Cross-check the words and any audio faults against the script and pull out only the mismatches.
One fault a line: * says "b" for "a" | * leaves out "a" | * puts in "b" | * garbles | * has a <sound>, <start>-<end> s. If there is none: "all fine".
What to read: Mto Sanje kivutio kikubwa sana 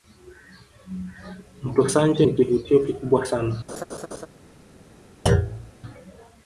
* puts in "ni"
* has a laugh, 3.7-4.3 s
* has a thud, 5.3-5.7 s